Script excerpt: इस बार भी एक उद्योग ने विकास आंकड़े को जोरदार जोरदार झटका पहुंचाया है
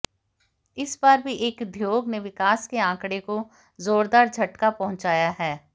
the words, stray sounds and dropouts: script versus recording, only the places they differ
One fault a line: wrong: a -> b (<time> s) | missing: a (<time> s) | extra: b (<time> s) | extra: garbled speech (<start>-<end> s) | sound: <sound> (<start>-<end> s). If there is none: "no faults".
extra: के (2.7 s)
missing: जोरदार (4.3 s)